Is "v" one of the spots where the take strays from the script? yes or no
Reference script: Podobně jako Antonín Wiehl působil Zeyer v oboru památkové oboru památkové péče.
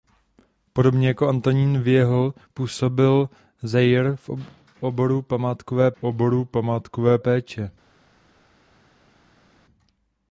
no